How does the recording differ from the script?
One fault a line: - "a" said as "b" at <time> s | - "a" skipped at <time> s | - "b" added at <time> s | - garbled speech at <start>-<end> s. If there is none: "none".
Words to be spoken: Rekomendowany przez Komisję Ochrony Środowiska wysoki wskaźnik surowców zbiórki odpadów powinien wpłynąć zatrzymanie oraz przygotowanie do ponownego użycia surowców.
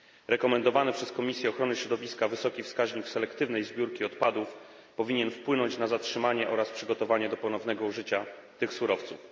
- "surowców" said as "selektywnej" at 3.1 s
- "na" added at 5.8 s
- "tych" added at 8.6 s